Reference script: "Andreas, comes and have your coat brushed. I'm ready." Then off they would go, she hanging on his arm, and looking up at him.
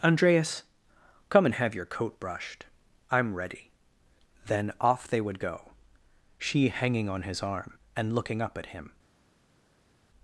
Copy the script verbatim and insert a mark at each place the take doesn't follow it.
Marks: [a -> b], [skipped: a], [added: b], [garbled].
"Andreas, [comes -> come] and have your coat brushed. I'm ready." Then off they would go, she hanging on his arm, and looking up at him.